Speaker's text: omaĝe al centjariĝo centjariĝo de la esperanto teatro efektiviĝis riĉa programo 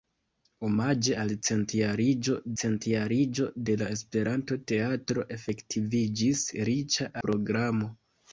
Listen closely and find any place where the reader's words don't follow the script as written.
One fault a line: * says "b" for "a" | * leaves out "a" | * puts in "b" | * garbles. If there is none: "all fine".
all fine